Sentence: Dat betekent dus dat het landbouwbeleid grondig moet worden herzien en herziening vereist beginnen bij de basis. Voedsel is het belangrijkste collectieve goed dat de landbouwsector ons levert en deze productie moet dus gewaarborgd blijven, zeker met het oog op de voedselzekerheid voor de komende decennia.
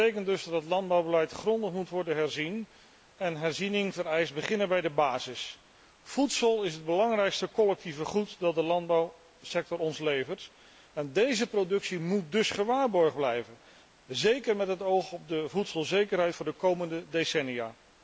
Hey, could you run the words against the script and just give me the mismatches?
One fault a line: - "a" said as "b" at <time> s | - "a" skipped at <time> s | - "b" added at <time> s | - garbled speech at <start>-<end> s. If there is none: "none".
none